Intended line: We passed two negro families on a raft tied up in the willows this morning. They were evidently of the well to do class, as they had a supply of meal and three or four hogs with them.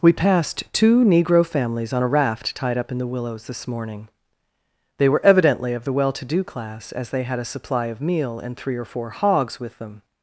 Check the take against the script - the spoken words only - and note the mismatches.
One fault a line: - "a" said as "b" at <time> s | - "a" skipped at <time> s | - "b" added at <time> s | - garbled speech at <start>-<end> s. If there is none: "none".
none